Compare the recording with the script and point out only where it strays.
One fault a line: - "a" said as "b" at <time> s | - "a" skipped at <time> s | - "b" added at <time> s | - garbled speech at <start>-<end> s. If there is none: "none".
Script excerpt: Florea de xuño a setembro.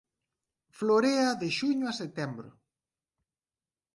none